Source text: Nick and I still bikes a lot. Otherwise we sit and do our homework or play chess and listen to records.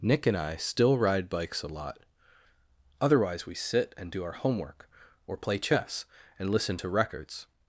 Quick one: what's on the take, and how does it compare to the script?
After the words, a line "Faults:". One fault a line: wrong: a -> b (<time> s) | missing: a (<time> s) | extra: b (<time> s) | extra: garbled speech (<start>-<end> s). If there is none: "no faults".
Nick and I still ride bikes a lot. Otherwise we sit and do our homework or play chess and listen to records.
Faults:
extra: ride (1.0 s)